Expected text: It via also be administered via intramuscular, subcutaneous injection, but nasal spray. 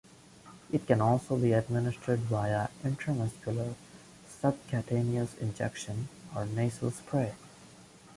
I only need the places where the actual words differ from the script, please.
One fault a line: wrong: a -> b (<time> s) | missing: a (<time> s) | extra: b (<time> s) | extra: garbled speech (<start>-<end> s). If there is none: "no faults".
wrong: via -> can (0.9 s)
wrong: but -> or (6.3 s)